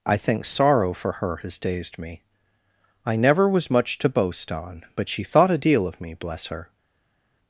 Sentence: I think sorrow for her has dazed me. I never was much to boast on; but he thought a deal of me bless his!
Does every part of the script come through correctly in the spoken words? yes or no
no